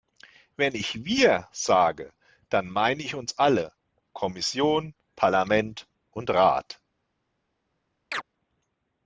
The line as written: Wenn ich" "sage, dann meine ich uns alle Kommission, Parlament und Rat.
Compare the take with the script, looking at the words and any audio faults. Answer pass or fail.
fail